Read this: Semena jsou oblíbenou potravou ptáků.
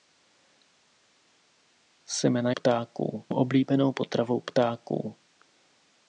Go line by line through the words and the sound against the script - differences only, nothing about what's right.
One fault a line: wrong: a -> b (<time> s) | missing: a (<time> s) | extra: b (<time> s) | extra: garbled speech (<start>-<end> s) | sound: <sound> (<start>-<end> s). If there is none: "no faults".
wrong: jsou -> ptáků (2.5 s)